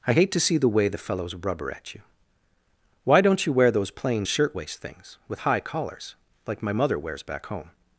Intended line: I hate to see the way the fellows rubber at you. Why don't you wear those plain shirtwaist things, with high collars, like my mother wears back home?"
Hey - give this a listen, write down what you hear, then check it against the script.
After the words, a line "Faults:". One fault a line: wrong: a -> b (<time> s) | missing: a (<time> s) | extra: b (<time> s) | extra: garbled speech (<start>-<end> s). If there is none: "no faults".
I hate to see the way the fellows rubber at you. Why don't you wear those plain shirtwaist things, with high collars, like my mother wears back home?"
Faults:
no faults